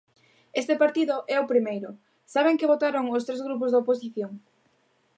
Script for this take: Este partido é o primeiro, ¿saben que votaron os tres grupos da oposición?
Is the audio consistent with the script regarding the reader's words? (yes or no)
yes